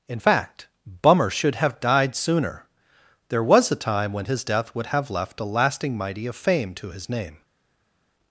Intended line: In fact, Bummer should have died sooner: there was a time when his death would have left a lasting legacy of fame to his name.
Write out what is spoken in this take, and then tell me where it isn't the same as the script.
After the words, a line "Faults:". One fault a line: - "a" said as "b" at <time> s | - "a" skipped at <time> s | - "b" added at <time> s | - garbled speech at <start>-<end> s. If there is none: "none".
In fact, Bummer should have died sooner: there was a time when his death would have left a lasting mighty of fame to his name.
Faults:
- "legacy" said as "mighty" at 6.0 s